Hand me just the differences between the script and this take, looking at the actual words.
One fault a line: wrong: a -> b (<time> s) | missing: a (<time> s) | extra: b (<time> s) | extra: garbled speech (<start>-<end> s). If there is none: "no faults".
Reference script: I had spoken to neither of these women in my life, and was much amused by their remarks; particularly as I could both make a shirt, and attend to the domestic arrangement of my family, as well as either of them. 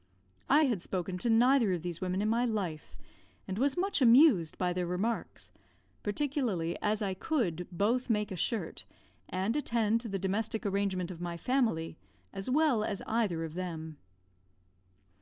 no faults